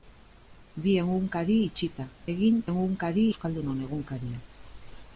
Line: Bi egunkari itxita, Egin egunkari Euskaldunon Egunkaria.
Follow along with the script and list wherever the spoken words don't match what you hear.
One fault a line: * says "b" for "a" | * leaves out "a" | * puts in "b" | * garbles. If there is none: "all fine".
all fine